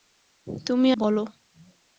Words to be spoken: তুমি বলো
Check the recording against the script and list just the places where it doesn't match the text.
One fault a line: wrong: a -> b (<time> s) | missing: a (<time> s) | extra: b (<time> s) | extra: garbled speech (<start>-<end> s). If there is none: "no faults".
no faults